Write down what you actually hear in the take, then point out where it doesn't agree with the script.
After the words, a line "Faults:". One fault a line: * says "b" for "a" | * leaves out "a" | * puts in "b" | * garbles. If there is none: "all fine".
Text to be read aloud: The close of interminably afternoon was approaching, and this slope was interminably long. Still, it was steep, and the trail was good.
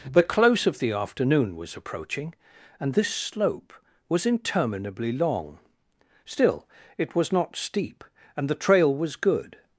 The close of the afternoon was approaching, and this slope was interminably long. Still, it was not steep, and the trail was good.
Faults:
* says "the" for "interminably"
* puts in "not"